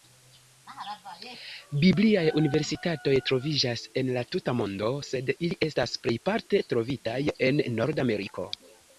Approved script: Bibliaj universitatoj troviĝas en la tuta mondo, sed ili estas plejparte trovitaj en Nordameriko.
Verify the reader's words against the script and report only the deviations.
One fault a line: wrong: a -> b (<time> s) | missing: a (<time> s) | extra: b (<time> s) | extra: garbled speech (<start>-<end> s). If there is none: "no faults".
no faults